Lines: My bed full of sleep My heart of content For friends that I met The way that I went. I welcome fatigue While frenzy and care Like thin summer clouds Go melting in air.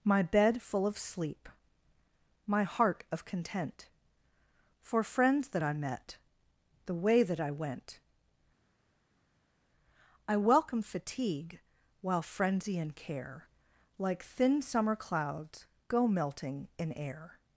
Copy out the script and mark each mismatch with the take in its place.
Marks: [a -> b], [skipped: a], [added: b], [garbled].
My bed full of sleep My heart of content For friends that I met The way that I went. I welcome fatigue While frenzy and care Like thin summer clouds Go melting in air.